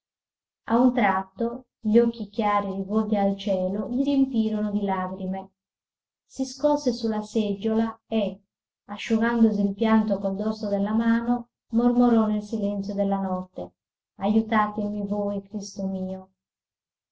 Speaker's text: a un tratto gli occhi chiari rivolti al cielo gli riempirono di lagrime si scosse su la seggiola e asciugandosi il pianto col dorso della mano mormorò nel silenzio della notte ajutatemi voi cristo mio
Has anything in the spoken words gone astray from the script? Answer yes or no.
no